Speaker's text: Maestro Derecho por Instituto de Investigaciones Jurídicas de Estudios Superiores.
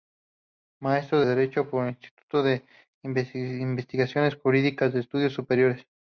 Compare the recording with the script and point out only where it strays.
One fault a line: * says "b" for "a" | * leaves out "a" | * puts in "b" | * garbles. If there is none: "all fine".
all fine